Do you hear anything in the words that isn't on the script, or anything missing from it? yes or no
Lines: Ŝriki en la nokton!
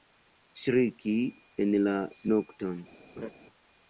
no